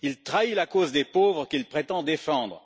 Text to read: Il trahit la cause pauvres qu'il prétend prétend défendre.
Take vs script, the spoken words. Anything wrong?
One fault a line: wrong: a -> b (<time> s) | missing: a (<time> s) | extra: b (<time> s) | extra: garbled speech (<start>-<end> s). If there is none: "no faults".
extra: des (0.9 s)
missing: prétend (2.0 s)